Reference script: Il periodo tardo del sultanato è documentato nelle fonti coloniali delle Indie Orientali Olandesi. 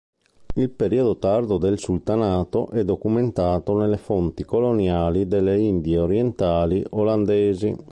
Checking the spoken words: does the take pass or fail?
pass